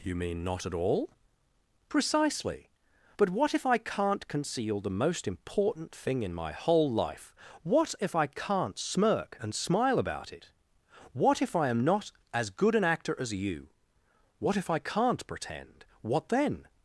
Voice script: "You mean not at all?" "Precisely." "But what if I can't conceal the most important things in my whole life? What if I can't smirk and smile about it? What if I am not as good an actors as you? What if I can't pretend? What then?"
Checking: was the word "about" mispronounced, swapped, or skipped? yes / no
no